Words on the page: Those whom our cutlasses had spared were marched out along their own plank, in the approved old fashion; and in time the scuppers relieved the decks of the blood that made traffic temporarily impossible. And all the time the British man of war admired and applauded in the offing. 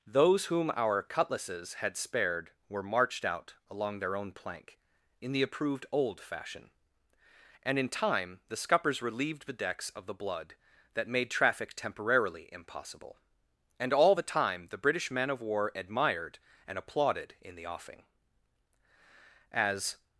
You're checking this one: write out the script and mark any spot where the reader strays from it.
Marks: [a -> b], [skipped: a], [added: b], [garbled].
Those whom our cutlasses had spared were marched out along their own plank, in the approved old fashion; and in time the scuppers relieved the decks of the blood that made traffic temporarily impossible. And all the time the British man of war admired and applauded in the offing. [added: As]